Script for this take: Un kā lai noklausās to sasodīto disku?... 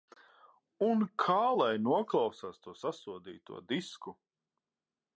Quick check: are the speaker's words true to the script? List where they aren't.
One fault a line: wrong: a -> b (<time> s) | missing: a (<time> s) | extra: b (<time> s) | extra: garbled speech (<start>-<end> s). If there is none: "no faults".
no faults